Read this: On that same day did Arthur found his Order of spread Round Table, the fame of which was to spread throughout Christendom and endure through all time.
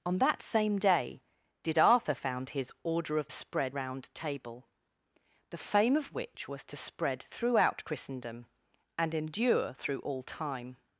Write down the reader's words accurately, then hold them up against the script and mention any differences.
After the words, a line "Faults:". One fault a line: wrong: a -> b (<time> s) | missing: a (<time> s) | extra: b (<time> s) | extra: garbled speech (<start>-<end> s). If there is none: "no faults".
On that same day did Arthur found his Order of spread Round Table, the fame of which was to spread throughout Christendom and endure through all time.
Faults:
no faults